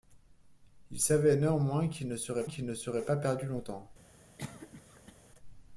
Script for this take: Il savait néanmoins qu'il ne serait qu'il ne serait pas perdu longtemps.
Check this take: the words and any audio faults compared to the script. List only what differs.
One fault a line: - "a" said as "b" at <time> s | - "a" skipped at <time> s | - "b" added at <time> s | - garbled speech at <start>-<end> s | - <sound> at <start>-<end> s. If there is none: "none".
- cough at 4.4-5.2 s